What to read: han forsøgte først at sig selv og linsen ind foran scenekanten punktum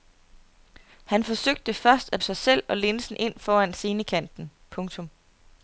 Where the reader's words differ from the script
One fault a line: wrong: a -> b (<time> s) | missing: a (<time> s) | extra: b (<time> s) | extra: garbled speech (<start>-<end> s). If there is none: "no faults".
no faults